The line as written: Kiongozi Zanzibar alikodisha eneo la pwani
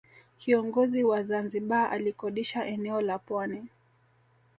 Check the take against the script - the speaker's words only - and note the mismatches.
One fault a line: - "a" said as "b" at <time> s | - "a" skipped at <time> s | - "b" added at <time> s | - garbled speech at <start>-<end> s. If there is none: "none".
- "wa" added at 1.0 s